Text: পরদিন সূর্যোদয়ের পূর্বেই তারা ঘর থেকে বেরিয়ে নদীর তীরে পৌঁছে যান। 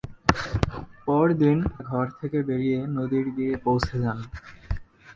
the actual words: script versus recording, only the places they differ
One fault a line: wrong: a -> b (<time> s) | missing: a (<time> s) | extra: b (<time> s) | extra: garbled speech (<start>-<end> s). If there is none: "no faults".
missing: সূর্যোদয়ের পূর্বেই তারা (1.6 s)